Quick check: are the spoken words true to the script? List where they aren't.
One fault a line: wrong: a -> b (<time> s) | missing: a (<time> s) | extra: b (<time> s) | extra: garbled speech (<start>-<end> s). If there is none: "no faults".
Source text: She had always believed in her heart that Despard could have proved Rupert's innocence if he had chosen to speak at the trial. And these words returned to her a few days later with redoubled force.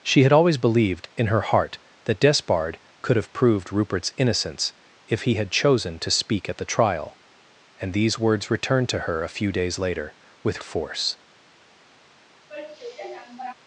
missing: redoubled (10.6 s)